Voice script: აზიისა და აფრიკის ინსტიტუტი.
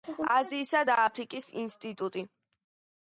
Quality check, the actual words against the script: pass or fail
pass